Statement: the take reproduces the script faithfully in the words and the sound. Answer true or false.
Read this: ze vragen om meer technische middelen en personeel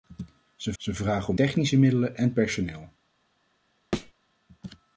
false